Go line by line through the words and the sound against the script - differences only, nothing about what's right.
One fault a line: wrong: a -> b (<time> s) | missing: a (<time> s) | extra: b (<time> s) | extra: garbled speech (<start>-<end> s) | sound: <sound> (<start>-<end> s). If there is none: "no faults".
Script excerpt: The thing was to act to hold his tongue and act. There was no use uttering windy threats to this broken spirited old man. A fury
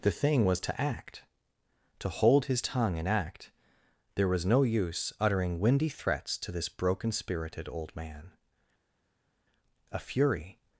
no faults